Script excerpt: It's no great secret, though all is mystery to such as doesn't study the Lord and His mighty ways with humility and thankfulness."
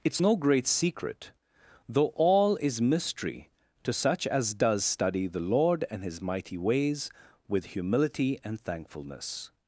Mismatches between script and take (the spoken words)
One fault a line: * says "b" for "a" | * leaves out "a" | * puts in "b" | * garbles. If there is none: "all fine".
* says "does" for "doesn't"